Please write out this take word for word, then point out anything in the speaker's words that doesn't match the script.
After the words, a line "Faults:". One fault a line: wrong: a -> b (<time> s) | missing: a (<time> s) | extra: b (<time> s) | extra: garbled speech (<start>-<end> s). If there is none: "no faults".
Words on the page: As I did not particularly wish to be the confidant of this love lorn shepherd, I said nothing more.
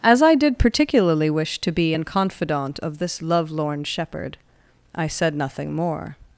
As I did particularly wish to be an confidant of this love lorn shepherd, I said nothing more.
Faults:
missing: not (0.6 s)
wrong: the -> an (1.9 s)